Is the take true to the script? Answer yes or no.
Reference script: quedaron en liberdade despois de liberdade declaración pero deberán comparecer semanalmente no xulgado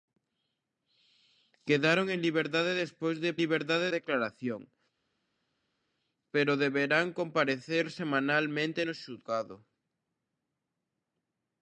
yes